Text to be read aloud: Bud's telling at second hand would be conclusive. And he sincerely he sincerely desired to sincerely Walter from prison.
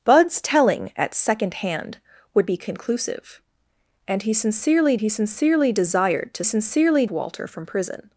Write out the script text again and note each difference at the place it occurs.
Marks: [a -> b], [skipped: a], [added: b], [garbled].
Bud's telling at second hand would be conclusive. And he sincerely he sincerely desired to sincerely Walter from prison.